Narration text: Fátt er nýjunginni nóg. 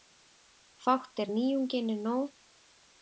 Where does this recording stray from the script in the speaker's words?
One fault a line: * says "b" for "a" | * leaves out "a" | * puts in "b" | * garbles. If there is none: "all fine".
all fine